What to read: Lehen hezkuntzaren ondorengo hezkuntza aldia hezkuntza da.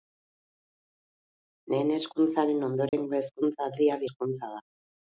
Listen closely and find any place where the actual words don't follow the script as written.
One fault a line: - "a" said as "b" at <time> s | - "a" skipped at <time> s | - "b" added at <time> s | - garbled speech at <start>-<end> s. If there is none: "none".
none